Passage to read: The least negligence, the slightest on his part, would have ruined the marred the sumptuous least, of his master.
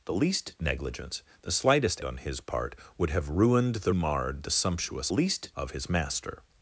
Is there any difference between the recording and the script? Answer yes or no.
no